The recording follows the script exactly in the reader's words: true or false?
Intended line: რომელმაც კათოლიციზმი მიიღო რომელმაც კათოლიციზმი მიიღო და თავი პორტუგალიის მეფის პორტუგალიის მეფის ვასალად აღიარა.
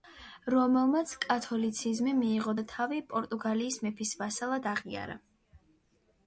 false